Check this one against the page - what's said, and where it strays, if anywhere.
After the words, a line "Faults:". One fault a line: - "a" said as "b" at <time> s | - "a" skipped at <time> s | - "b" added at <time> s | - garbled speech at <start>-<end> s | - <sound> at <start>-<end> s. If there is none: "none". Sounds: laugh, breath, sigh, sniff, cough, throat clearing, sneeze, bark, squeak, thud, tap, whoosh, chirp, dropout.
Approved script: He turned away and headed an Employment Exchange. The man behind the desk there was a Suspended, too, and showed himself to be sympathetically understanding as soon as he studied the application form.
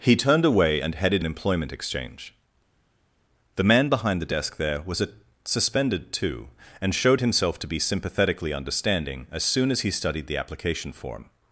He turned away and headed an Employment Exchange. The man behind the desk there was a Suspended, too, and showed himself to be sympathetically understanding as soon as he studied the application form.
Faults:
none